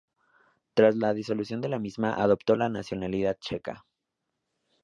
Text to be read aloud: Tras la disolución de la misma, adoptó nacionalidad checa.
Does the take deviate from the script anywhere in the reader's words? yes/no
yes